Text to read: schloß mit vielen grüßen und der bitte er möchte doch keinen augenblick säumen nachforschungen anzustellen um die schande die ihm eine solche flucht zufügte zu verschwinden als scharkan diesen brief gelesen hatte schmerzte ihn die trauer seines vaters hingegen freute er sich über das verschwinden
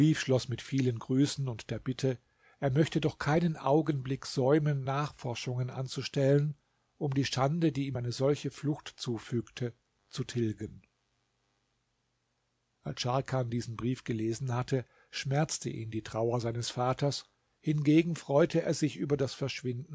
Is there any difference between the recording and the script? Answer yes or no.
yes